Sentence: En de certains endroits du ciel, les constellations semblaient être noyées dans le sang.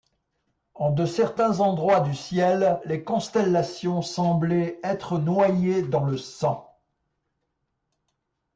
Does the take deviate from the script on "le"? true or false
false